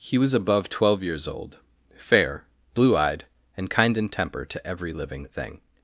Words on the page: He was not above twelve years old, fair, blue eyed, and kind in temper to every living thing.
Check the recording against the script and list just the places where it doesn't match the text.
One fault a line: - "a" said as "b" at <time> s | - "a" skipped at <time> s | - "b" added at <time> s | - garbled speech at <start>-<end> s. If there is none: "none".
- "not" skipped at 0.3 s